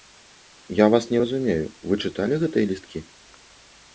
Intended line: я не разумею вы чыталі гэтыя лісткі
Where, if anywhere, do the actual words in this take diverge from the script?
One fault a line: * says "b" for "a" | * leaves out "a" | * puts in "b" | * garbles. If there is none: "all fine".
* puts in "вас"